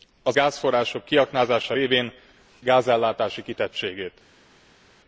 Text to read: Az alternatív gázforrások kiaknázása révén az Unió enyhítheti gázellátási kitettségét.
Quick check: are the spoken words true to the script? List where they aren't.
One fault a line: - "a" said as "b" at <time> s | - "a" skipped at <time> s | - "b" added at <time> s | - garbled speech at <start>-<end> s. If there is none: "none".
- "alternatív" skipped at 0.4 s
- "az Unió enyhítheti" skipped at 2.1 s